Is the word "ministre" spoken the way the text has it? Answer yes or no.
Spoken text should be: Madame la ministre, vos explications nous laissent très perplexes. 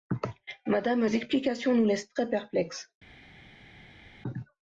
no